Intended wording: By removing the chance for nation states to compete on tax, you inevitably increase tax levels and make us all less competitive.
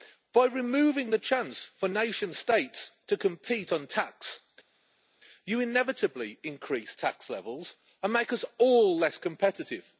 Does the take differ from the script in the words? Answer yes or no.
no